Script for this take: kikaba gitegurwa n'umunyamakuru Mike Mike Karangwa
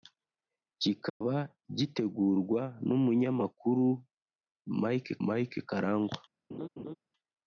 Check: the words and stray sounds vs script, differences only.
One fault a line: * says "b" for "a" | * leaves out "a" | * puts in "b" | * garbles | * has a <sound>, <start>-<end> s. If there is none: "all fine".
* has a dropout, 1.1-1.2 s
* has a laugh, 6.5-6.9 s